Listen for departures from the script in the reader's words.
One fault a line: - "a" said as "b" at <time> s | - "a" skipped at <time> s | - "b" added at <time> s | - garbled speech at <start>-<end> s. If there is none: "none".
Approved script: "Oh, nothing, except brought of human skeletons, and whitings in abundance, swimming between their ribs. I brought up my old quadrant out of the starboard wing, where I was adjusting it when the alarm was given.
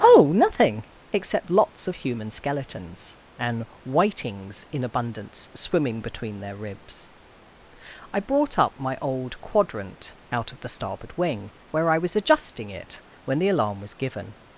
- "brought" said as "lots" at 1.5 s